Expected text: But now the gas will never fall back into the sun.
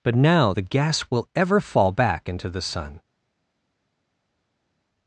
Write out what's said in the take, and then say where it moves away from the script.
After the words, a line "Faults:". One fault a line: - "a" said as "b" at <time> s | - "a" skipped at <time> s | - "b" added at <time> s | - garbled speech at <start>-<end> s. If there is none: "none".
But now the gas will ever fall back into the sun.
Faults:
- "never" said as "ever" at 1.3 s